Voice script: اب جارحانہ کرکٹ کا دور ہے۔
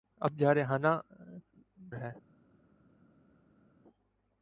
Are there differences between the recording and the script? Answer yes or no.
yes